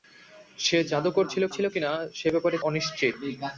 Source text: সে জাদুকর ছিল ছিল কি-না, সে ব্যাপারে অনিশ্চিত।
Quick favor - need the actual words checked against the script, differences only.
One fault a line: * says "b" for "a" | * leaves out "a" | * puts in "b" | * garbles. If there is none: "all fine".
all fine